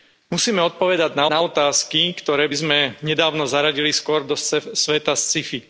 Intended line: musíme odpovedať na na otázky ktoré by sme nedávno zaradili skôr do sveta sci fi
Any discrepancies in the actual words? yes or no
no